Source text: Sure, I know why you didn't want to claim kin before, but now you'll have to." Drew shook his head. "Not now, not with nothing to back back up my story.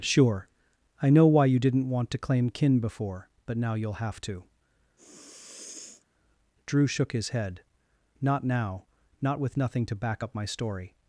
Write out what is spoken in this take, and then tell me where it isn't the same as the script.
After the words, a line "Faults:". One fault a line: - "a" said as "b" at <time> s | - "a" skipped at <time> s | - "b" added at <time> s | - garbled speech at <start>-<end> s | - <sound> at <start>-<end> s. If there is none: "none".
Sure, I know why you didn't want to claim kin before, but now you'll have to." Drew shook his head. "Not now, not with nothing to back up my story.
Faults:
- sniff at 5.0-6.0 s
- "back" skipped at 10.2 s